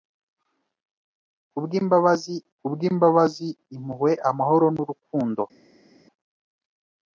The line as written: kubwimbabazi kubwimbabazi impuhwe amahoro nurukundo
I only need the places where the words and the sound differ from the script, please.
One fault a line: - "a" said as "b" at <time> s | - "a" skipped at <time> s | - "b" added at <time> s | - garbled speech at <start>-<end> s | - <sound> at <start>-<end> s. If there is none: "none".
none